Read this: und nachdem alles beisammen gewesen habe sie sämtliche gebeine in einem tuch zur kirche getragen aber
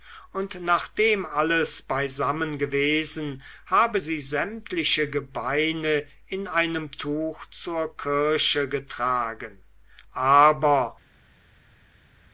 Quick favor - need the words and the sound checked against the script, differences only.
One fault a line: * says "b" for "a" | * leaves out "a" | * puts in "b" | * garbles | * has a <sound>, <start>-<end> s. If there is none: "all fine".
all fine